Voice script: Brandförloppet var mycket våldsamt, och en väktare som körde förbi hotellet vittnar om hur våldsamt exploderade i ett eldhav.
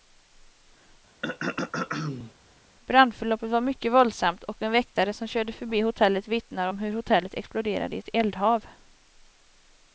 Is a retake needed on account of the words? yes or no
yes